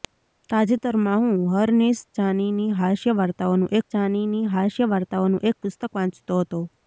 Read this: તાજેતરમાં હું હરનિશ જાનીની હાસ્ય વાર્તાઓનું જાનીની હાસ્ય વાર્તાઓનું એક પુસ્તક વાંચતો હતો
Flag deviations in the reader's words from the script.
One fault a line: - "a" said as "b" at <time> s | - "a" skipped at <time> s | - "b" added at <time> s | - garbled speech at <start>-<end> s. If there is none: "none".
none